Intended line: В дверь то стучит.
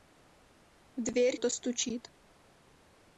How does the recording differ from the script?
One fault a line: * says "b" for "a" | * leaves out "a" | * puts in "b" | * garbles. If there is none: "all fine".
all fine